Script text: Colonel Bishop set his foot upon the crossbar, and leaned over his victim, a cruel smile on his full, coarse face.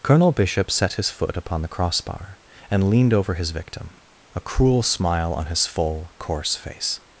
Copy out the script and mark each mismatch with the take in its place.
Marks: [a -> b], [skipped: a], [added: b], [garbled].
Colonel Bishop set his foot upon the crossbar, and leaned over his victim, a cruel smile on his full, coarse face.